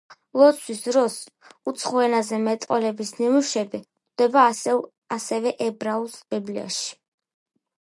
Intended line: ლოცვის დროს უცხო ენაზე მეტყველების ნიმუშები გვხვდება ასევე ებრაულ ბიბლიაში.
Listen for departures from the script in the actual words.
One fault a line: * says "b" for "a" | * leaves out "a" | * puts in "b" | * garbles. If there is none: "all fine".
all fine